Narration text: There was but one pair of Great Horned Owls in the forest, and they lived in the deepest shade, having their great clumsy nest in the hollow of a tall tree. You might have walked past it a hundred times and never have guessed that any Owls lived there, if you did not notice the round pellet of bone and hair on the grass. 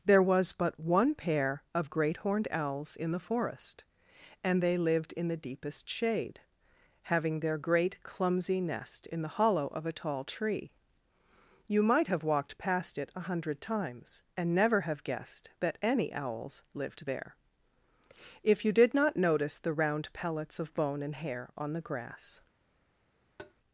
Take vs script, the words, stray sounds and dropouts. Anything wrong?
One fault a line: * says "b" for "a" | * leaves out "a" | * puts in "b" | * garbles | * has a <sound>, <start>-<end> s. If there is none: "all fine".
* says "pellets" for "pellet"
* has a tap, 23.4-23.5 s